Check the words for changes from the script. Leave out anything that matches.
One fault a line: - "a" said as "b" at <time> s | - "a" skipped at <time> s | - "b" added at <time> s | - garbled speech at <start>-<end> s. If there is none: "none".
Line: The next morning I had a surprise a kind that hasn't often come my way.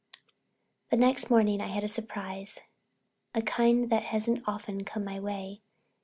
none